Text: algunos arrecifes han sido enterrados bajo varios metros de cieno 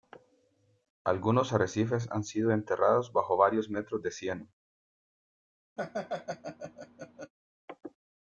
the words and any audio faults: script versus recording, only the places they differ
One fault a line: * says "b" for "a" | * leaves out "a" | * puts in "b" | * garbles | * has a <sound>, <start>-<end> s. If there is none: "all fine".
* has a laugh, 5.8-7.3 s